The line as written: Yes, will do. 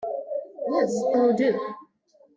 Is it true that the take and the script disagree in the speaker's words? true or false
false